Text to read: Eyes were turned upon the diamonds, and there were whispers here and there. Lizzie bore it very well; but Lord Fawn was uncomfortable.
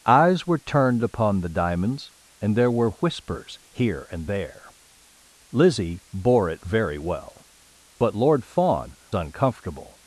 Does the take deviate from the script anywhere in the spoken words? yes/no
yes